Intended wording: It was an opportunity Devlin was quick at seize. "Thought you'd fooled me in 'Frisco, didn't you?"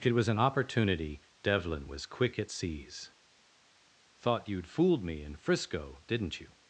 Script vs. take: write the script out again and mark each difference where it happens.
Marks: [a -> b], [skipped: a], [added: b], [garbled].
It was an opportunity Devlin was quick at seize. "Thought you'd fooled me in 'Frisco, didn't you?"